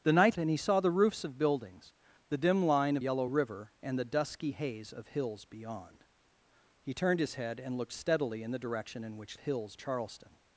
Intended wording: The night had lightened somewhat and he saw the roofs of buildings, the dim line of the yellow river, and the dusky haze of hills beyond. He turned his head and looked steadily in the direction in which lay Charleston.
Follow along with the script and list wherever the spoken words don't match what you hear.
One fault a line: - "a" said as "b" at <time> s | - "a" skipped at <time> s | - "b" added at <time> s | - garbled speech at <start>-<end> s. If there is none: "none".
- "had lightened somewhat" skipped at 0.3 s
- "the" skipped at 3.0 s
- "lay" said as "hills" at 9.4 s